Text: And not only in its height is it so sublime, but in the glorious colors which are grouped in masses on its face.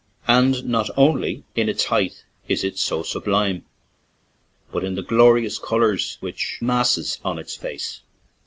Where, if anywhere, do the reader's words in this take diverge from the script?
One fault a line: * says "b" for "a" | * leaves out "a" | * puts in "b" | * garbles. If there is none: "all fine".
* leaves out "are grouped in"